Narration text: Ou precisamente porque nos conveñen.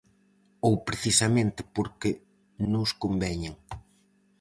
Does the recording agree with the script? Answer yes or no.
yes